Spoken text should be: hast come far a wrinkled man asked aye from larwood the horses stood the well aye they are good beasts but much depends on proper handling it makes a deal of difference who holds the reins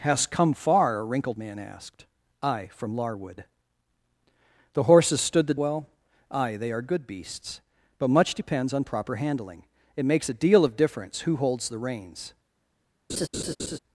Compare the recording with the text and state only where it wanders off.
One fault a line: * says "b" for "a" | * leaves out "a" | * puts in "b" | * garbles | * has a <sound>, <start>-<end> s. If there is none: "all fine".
* has a laugh, 13.1-13.8 s